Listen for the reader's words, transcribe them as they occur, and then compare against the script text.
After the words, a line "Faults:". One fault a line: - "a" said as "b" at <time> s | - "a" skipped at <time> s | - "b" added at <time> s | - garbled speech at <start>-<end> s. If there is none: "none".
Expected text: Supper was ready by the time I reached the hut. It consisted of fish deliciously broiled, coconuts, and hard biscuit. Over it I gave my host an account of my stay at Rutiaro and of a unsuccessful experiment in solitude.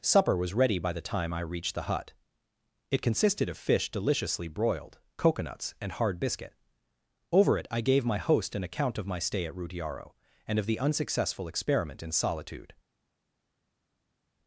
Supper was ready by the time I reached the hut. It consisted of fish deliciously broiled, coconuts, and hard biscuit. Over it I gave my host an account of my stay at Rutiaro and of the unsuccessful experiment in solitude.
Faults:
- "a" said as "the" at 10.7 s